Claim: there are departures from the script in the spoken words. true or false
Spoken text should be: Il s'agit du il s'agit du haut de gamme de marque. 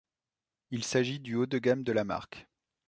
true